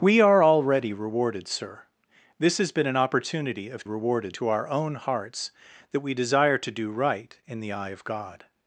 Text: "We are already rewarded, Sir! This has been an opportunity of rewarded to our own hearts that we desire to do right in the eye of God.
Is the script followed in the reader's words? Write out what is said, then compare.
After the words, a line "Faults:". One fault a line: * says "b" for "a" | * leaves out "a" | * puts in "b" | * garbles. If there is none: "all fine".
"We are already rewarded, Sir! This has been an opportunity of rewarded to our own hearts that we desire to do right in the eye of God.
Faults:
all fine